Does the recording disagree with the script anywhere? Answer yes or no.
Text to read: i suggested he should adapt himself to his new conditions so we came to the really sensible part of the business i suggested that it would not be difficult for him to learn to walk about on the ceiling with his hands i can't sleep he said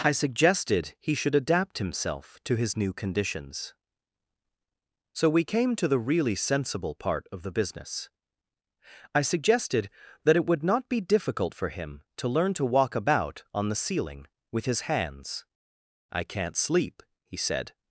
no